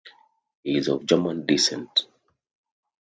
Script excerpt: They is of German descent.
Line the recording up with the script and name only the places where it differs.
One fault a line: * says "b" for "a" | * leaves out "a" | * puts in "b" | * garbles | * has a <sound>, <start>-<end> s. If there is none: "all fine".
* says "He" for "They"